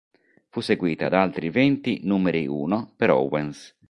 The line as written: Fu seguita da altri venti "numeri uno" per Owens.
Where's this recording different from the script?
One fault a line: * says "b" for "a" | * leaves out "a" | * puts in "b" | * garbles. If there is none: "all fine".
all fine